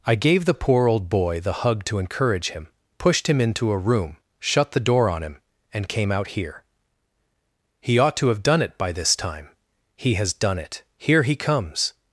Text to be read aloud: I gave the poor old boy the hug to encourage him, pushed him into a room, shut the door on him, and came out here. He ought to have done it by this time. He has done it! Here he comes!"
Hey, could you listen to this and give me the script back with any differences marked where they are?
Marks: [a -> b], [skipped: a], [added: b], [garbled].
I gave the poor old boy the hug to encourage him, pushed him into a room, shut the door on him, and came out here. He ought to have done it by this time. He has done it! Here he comes!"